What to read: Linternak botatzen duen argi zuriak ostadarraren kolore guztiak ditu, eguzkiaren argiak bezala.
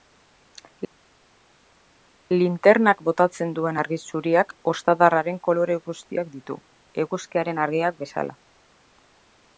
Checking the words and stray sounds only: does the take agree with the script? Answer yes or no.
yes